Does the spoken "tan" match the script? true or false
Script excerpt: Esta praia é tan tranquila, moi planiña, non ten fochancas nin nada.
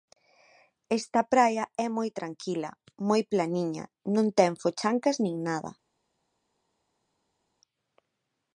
false